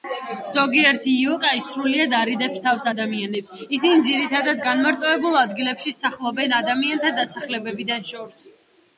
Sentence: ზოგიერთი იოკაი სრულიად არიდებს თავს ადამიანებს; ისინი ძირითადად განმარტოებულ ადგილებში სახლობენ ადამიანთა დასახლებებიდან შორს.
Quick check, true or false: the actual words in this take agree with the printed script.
true